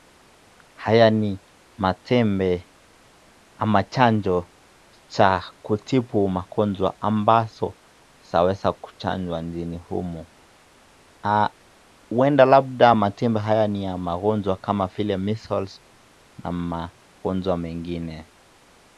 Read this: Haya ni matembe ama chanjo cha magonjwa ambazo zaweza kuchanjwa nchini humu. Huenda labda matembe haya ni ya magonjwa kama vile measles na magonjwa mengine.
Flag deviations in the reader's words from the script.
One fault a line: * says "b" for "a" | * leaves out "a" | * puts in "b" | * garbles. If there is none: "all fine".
* puts in "kutibu"